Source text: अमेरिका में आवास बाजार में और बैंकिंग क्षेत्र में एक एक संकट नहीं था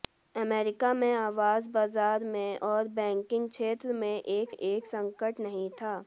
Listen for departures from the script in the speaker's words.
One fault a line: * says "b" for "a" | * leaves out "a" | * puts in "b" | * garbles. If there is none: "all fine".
all fine